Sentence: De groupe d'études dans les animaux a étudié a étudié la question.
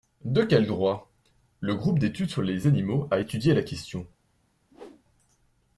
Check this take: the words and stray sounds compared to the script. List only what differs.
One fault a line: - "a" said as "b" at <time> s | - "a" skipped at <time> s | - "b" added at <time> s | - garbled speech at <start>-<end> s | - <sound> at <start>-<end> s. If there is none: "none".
- "quel droit Le" added at 0.4 s
- "dans" said as "sur" at 2.3 s
- "a étudié" skipped at 3.5 s
- whoosh at 4.7-5.0 s